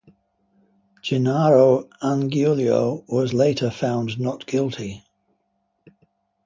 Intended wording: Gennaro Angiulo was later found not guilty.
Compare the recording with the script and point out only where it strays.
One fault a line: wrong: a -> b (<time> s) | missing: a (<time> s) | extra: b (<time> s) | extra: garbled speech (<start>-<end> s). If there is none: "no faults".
no faults